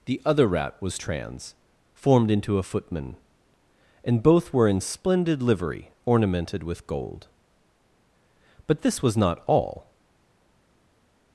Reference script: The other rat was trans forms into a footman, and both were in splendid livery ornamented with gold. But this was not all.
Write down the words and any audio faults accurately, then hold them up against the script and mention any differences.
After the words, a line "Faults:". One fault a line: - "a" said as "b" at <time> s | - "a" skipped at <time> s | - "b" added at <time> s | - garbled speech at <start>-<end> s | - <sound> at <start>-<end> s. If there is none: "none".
The other rat was trans formed into a footman, and both were in splendid livery ornamented with gold. But this was not all.
Faults:
- "forms" said as "formed" at 1.9 s